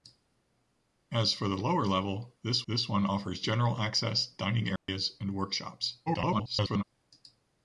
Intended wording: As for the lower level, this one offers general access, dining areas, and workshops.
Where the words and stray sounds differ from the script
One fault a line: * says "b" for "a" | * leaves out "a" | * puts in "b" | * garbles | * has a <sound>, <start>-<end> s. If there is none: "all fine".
* puts in "this"
* has a dropout, 4.8-4.9 s
* garbles